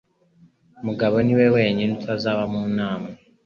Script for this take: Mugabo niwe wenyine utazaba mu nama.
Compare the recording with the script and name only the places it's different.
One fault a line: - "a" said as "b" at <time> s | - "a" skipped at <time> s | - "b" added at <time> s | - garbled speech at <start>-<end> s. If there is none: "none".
none